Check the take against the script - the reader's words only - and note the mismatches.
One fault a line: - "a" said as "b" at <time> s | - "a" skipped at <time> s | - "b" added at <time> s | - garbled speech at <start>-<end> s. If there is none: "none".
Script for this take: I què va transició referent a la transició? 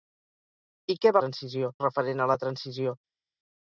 none